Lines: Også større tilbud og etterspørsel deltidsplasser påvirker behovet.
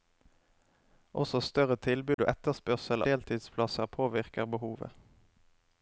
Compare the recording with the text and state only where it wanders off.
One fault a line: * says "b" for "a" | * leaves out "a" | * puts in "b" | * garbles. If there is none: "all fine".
all fine